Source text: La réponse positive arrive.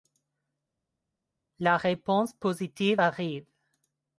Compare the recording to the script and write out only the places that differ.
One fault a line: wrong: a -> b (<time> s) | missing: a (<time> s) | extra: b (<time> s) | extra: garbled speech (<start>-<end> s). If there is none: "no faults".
no faults